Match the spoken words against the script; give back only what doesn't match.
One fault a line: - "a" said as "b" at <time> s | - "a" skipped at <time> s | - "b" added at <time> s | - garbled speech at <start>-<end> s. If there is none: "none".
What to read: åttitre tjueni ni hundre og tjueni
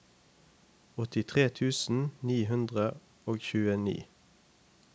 - "tjueni" said as "tusen" at 1.6 s